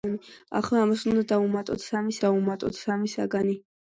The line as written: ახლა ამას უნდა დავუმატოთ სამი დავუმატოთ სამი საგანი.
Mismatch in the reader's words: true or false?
false